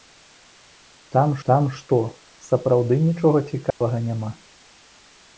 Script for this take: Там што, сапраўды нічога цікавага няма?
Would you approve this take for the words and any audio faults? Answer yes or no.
no